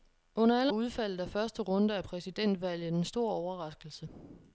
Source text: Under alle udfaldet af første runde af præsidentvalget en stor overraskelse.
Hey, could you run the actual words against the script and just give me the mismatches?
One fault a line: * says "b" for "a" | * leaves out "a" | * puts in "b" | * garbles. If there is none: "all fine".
all fine